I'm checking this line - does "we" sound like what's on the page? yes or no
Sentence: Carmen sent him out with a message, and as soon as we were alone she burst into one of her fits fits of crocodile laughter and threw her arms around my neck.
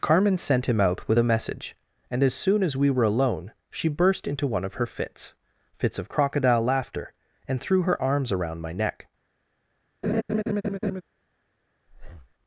yes